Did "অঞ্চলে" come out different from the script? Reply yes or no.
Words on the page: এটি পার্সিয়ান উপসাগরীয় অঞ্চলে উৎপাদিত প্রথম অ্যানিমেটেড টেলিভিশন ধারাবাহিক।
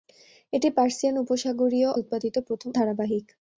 yes